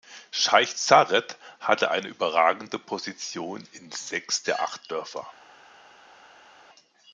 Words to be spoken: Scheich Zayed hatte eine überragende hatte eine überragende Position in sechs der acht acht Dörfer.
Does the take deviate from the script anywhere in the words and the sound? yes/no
yes